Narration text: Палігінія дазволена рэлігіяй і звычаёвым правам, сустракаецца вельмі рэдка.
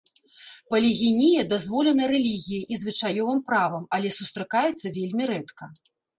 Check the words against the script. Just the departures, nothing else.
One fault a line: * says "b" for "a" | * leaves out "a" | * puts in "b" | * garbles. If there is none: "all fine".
* puts in "але"